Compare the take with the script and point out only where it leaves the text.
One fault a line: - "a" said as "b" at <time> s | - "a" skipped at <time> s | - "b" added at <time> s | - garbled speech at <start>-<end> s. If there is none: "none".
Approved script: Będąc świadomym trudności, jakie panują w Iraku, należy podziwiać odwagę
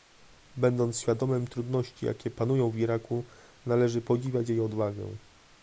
- "jej" added at 4.5 s